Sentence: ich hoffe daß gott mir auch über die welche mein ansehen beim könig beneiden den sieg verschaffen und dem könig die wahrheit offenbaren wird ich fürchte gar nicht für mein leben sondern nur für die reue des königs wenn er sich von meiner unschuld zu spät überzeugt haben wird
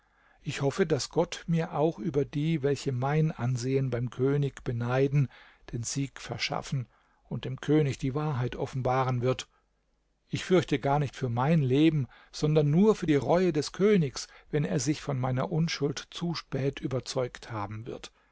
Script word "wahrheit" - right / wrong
right